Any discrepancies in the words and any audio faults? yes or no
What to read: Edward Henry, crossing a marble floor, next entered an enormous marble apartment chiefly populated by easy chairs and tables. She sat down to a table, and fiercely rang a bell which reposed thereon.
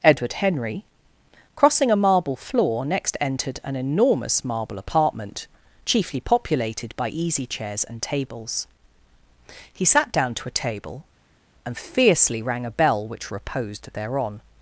yes